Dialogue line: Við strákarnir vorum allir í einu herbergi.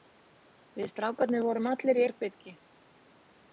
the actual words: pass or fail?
fail